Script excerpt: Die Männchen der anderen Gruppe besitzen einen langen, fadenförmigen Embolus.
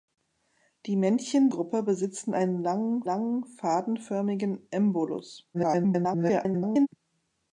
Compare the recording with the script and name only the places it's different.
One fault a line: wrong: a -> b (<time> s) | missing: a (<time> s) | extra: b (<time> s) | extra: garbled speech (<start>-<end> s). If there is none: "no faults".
missing: der anderen (1.5 s)
extra: langen (3.0 s)
extra: garbled speech (5.5-6.9 s)